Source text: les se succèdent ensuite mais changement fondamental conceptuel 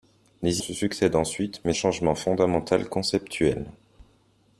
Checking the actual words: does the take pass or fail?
pass